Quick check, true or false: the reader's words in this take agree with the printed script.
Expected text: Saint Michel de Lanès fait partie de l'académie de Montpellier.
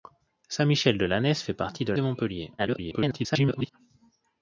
false